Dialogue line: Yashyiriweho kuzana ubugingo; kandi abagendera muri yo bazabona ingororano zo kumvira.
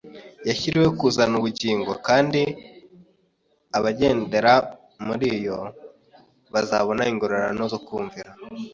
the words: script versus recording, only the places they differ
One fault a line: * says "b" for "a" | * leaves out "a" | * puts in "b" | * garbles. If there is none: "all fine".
all fine